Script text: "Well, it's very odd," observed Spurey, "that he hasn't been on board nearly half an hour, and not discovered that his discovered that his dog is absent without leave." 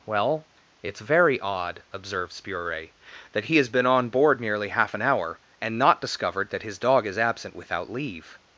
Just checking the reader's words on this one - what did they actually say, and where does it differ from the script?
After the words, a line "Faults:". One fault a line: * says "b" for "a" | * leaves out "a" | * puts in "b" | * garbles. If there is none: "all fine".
"Well, it's very odd," observed Spurey, "that he has been on board nearly half an hour, and not discovered that his dog is absent without leave."
Faults:
* says "has" for "hasn't"
* leaves out "discovered that his"